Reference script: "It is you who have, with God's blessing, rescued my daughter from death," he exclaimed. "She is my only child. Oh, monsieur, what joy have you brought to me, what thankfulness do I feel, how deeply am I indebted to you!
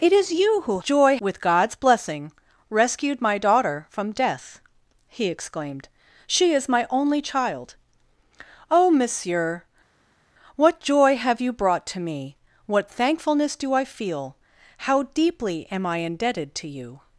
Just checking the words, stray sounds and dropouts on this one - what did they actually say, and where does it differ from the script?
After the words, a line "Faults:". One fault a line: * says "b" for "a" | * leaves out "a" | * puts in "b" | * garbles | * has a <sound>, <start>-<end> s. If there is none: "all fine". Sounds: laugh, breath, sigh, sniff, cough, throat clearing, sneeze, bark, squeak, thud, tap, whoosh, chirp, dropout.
"It is you who joy, with God's blessing, rescued my daughter from death," he exclaimed. "She is my only child. Oh, monsieur, what joy have you brought to me, what thankfulness do I feel, how deeply am I indebted to you!
Faults:
* says "joy" for "have"